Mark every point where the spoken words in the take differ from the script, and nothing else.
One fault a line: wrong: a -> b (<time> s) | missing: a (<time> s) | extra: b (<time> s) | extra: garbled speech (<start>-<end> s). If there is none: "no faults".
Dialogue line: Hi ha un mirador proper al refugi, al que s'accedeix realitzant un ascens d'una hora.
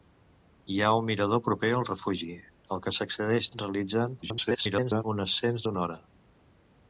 extra: garbled speech (4.2-5.0 s)